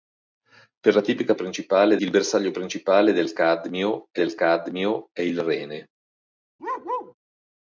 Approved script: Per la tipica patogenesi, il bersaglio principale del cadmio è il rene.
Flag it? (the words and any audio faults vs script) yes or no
yes